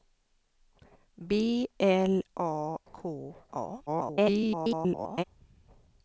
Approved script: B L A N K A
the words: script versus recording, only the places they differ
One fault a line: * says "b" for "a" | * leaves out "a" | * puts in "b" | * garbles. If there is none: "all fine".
* leaves out "N"
* garbles